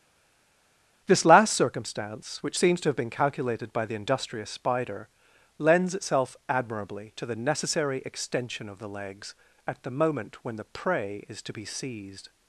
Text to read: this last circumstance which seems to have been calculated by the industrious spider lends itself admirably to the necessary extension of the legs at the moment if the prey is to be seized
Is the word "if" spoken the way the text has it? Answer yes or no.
no